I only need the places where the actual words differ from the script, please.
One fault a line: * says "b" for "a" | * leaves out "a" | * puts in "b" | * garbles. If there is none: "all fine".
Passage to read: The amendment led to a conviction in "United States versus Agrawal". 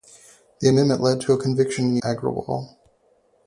* leaves out "United States versus"